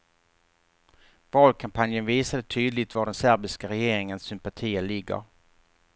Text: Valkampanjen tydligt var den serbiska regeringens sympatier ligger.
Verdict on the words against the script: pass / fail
fail